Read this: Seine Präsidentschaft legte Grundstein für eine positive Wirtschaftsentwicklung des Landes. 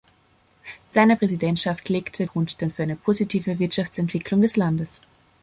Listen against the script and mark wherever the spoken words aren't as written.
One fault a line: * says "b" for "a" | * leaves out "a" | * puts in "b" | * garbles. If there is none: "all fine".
all fine